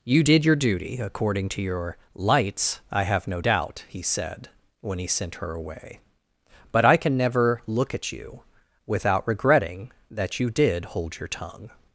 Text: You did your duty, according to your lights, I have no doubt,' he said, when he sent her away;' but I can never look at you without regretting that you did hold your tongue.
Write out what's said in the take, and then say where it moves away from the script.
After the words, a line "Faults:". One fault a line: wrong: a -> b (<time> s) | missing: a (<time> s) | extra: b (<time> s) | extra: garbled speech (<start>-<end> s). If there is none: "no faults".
You did your duty, according to your lights, I have no doubt,' he said, when he sent her away;' but I can never look at you without regretting that you did hold your tongue.
Faults:
no faults